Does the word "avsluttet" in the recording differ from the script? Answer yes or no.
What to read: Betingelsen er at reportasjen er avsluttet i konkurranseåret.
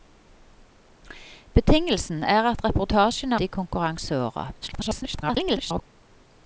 yes